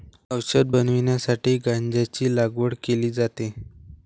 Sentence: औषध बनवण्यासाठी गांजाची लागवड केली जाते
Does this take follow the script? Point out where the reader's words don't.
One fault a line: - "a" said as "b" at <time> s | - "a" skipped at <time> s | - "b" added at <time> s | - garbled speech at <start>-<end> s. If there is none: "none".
none